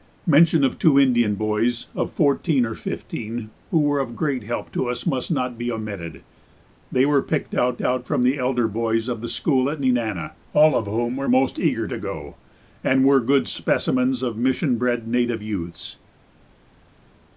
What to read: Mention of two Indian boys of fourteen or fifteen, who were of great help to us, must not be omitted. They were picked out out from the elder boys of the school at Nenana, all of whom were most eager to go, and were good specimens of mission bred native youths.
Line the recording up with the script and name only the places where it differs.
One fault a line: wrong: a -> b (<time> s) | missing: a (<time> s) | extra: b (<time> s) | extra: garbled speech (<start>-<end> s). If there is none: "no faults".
no faults